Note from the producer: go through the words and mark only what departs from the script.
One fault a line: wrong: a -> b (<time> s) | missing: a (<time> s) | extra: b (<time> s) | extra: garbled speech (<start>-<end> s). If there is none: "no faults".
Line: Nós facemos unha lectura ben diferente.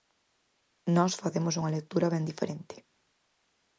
no faults